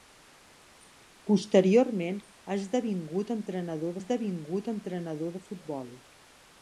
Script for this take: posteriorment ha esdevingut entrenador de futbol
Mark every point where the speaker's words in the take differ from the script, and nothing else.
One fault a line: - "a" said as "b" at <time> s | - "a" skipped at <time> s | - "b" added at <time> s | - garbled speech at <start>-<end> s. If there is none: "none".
- "esdevingut entrenador" added at 4.0 s